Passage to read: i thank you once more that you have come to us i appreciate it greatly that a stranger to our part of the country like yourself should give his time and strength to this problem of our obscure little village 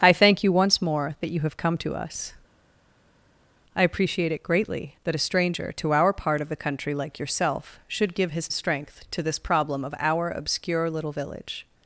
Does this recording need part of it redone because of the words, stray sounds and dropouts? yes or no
yes